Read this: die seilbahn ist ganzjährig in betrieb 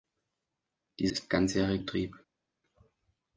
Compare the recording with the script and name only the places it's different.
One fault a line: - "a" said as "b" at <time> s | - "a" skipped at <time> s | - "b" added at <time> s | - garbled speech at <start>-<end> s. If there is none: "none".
- "seilbahn" skipped at 1.1 s
- "in" skipped at 1.8 s